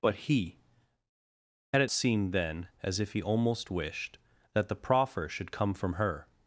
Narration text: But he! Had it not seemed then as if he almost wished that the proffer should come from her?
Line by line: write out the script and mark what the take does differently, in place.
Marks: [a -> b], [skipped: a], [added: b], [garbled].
But he! Had it [skipped: not] seemed then as if he almost wished that the proffer should come from her?